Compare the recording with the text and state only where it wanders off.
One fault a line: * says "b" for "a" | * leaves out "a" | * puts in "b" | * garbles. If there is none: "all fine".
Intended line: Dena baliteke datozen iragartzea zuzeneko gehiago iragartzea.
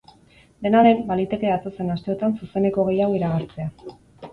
* puts in "den"
* says "asteotan" for "iragartzea"